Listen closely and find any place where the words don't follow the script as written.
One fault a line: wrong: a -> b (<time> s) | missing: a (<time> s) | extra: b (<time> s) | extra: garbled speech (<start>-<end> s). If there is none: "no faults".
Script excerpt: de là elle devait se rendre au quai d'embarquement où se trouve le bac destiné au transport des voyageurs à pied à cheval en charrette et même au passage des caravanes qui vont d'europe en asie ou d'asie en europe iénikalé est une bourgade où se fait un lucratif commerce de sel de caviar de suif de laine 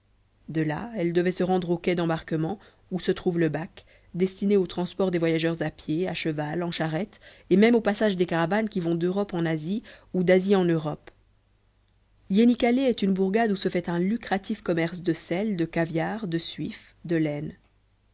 no faults